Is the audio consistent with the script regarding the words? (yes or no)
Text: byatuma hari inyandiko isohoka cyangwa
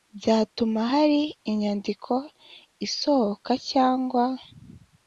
yes